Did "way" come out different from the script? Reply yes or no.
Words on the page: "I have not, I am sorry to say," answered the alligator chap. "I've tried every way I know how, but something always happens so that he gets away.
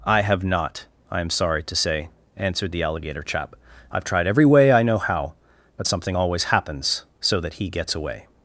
no